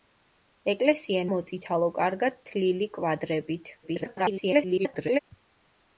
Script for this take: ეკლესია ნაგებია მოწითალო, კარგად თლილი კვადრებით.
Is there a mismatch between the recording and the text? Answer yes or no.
yes